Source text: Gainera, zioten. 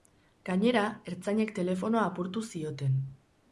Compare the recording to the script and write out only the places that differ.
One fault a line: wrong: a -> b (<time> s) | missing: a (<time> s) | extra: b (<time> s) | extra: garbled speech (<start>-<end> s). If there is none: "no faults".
extra: ertzainek telefonoa apurtu (1.1 s)